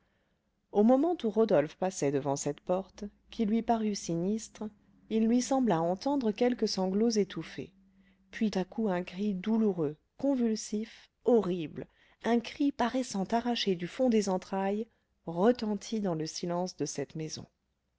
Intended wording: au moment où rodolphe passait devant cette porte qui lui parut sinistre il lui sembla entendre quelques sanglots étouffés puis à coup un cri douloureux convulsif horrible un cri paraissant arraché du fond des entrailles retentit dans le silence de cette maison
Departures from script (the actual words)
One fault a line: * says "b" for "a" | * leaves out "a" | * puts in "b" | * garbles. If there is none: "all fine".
all fine